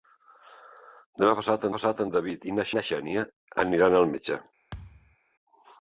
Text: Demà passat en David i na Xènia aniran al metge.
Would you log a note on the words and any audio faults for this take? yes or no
yes